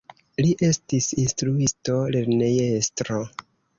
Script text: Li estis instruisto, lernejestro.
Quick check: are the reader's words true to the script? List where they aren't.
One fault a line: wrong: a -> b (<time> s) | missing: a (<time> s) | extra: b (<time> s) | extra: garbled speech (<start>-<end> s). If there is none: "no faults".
no faults